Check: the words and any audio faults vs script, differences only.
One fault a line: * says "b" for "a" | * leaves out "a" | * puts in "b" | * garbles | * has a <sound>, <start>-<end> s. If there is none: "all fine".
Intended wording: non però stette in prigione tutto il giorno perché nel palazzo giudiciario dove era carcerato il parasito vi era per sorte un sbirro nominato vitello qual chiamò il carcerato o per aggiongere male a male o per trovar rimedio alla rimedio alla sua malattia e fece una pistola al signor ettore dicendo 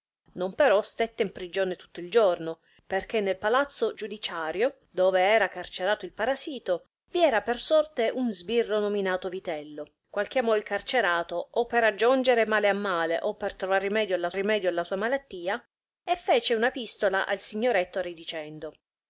all fine